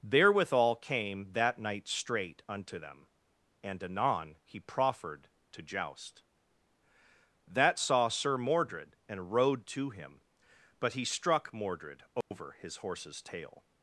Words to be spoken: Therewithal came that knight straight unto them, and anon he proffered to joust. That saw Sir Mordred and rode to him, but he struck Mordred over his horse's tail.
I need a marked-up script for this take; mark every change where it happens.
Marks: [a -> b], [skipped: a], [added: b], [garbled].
Therewithal came that knight straight unto them, and anon he proffered to joust. That saw Sir Mordred and rode to him, but he struck Mordred over his horse's tail.